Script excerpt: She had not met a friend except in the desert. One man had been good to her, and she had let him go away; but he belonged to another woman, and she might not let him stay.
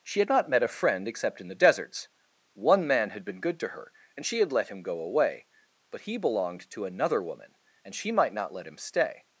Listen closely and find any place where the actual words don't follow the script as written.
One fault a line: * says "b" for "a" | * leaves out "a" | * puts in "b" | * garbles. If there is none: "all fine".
* says "deserts" for "desert"